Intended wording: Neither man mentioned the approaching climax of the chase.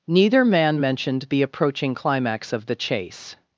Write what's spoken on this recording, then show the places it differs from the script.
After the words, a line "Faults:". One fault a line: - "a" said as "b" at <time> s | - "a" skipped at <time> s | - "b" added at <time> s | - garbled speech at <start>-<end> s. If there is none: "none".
Neither man mentioned the approaching climax of the chase.
Faults:
none